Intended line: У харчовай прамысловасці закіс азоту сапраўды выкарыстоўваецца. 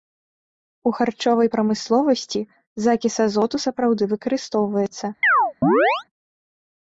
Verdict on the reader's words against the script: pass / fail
pass